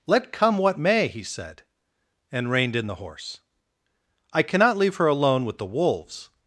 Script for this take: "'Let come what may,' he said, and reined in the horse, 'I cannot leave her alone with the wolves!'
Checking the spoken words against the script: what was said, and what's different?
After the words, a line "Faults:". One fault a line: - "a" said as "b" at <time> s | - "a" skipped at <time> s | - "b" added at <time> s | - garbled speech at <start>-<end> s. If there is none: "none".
"'Let come what may,' he said, and reined in the horse, 'I cannot leave her alone with the wolves!'
Faults:
none